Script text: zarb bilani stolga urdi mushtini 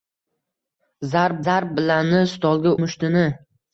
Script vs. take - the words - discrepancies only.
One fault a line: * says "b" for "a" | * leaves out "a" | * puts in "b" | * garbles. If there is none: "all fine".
* puts in "zarb"
* leaves out "urdi"